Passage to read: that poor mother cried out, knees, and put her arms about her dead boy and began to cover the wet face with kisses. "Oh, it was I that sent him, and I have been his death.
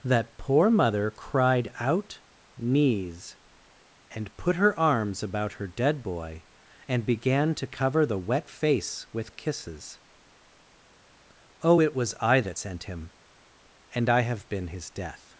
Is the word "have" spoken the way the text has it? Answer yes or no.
yes